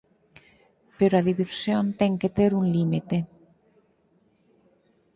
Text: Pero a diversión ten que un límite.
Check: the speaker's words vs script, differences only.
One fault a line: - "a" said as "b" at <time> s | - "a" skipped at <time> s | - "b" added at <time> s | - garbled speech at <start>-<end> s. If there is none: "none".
- "ter" added at 2.4 s